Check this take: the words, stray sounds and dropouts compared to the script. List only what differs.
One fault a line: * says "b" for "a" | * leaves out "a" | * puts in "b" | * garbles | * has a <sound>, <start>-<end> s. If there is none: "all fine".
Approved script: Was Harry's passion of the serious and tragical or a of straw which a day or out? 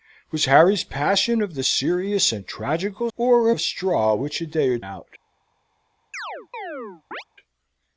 * has a chirp, 6.1-7.2 s